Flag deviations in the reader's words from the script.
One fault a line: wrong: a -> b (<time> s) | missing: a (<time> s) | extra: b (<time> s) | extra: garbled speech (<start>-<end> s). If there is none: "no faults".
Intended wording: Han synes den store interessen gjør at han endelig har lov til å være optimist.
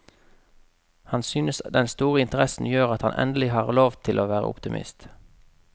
no faults